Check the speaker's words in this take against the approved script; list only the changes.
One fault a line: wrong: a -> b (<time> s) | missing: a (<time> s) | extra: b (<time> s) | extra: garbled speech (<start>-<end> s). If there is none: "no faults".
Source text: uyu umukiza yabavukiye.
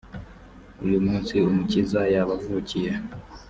extra: munsi (1.1 s)